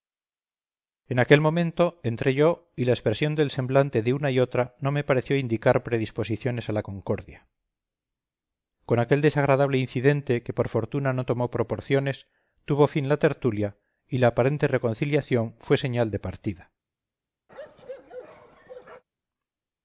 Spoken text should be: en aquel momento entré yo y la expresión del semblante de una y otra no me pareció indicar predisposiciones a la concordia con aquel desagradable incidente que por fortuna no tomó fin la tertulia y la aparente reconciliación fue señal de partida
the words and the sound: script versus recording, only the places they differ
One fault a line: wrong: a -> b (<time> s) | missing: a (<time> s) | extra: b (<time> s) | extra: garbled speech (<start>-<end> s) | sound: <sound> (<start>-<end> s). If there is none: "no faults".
extra: proporciones tuvo (11.5 s)
sound: bark (17.5-19.0 s)